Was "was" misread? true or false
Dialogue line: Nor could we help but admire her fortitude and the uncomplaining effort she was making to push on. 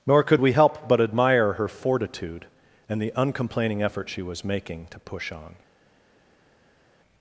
false